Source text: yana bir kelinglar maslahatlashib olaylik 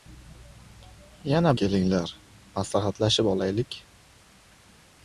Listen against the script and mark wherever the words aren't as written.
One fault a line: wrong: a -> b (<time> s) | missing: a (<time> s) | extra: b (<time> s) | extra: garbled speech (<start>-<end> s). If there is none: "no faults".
missing: bir (1.5 s)